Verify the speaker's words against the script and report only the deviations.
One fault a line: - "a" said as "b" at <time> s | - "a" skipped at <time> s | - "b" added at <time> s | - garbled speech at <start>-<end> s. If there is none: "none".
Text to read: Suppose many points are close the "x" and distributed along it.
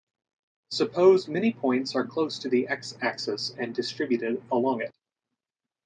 - "to" added at 2.4 s
- "axis" added at 3.0 s